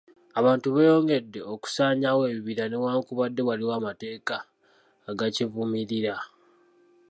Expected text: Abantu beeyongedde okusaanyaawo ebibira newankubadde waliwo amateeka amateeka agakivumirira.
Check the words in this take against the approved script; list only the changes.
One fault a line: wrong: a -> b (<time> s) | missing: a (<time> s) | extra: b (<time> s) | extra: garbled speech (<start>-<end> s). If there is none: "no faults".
missing: amateeka (4.4 s)